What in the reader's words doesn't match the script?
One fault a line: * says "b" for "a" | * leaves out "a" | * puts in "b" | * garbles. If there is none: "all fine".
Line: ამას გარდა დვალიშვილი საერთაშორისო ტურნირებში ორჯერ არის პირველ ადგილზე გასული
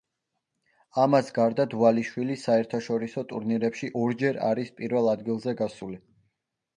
all fine